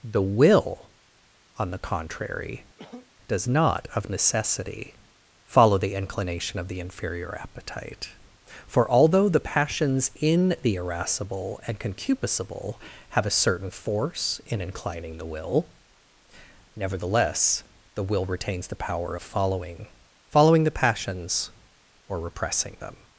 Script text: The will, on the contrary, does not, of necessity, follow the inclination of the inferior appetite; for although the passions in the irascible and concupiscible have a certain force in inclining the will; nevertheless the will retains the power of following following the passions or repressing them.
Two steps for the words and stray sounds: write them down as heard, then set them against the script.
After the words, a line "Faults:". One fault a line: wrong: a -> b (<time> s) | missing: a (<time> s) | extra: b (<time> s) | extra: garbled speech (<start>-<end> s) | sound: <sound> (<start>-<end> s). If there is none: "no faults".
The will, on the contrary, does not, of necessity, follow the inclination of the inferior appetite; for although the passions in the irascible and concupiscible have a certain force in inclining the will; nevertheless the will retains the power of following following the passions or repressing them.
Faults:
sound: cough (2.8-3.1 s)